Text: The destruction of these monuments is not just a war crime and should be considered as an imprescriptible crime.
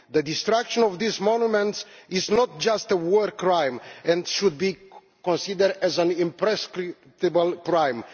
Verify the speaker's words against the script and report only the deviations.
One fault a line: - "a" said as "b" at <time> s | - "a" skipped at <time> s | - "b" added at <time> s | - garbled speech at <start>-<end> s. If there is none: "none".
none